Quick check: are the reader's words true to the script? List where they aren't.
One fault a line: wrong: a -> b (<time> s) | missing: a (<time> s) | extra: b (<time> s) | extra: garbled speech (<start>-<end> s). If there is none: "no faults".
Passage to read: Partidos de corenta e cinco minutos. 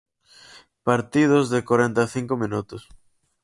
no faults